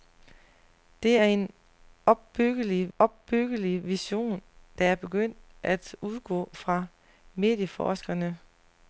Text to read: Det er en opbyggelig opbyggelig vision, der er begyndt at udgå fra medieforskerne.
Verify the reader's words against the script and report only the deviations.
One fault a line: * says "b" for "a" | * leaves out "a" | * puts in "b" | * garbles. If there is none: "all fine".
all fine